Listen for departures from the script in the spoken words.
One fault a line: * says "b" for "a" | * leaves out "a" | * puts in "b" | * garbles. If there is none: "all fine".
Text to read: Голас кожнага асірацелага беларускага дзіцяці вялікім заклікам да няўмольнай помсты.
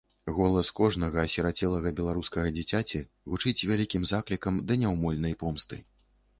* puts in "гучыць"